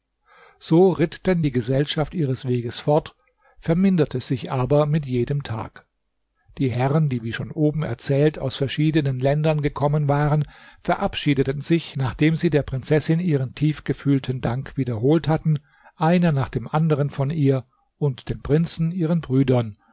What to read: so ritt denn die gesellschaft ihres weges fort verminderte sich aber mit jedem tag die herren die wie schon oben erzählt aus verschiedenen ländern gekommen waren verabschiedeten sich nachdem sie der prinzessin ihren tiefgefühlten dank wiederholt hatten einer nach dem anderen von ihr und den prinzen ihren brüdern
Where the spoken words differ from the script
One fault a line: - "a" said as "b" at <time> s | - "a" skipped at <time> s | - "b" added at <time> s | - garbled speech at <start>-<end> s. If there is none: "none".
none